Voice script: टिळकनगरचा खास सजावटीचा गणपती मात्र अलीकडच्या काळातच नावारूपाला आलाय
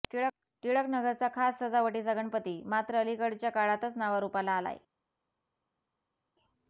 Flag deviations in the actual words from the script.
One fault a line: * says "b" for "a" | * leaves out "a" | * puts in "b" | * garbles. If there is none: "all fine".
all fine